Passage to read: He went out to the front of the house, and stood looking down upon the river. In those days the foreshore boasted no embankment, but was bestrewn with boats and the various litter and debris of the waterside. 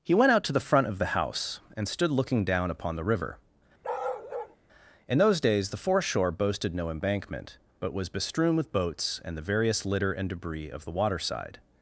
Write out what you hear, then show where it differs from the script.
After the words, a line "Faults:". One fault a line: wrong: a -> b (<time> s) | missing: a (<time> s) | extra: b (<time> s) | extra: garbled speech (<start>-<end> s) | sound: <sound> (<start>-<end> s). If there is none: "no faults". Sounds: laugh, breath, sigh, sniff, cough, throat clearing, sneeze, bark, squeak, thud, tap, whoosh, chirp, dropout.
He went out to the front of the house, and stood looking down upon the river. In those days the foreshore boasted no embankment, but was bestrewn with boats and the various litter and debris of the waterside.
Faults:
sound: bark (3.8-4.6 s)